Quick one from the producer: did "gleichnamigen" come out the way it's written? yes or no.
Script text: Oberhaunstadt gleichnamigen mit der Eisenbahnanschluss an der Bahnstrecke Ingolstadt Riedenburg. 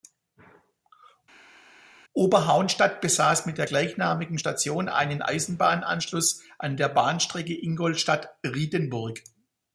no